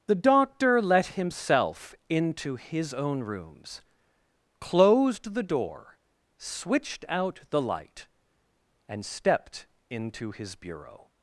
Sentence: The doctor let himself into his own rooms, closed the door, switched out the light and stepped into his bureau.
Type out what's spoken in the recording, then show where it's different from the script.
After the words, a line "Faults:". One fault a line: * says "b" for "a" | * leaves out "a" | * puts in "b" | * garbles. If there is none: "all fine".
The doctor let himself into his own rooms, closed the door, switched out the light and stepped into his bureau.
Faults:
all fine